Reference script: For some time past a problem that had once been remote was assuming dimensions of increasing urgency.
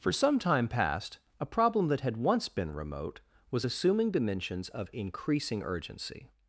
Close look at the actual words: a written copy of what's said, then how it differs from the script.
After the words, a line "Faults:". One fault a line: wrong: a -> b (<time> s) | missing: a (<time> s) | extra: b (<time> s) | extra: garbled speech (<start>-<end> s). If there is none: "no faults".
For some time past a problem that had once been remote was assuming dimensions of increasing urgency.
Faults:
no faults